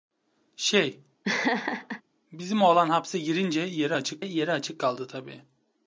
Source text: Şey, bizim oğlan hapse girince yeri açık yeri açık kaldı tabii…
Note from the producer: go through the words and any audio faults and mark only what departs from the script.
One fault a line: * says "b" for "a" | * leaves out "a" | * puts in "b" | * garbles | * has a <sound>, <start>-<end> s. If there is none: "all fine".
* has a laugh, 1.2-2.0 s